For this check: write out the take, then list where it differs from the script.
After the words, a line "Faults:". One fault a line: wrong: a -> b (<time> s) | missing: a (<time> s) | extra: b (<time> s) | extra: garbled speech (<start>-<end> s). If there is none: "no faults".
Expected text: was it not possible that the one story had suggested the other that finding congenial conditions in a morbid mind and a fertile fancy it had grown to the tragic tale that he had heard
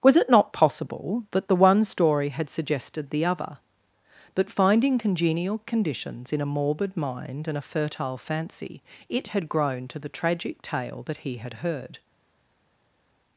was it not possible that the one story had suggested the other but finding congenial conditions in a morbid mind and a fertile fancy it had grown to the tragic tale that he had heard
Faults:
wrong: that -> but (4.3 s)